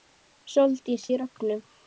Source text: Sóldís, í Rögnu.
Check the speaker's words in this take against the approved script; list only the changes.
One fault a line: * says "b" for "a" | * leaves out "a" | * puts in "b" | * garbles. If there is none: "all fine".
all fine